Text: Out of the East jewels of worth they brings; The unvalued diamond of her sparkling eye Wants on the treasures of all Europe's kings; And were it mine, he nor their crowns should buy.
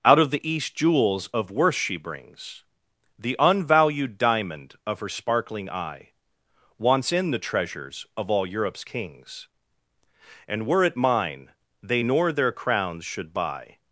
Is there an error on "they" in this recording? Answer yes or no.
yes